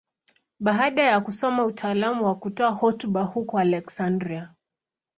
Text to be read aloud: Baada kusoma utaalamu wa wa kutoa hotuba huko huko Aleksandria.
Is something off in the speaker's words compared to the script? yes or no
yes